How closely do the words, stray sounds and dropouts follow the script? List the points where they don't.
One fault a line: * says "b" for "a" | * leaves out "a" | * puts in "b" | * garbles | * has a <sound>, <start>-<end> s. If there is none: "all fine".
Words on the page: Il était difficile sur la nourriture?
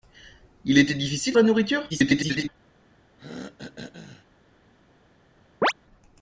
* leaves out "sur"
* garbles
* has a throat clearing, 3.2-4.3 s
* has a chirp, 5.6-5.7 s